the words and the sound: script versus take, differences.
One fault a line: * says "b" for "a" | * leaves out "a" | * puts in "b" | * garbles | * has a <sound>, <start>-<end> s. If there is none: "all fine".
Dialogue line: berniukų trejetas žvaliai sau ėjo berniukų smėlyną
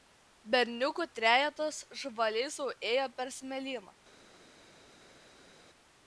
* says "per" for "berniukų"